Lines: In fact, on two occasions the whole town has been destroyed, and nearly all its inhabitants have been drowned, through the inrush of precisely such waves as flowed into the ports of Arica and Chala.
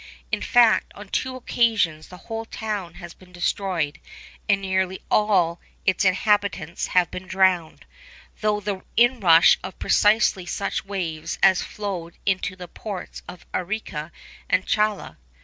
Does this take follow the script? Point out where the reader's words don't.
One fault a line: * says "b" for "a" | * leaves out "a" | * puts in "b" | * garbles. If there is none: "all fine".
all fine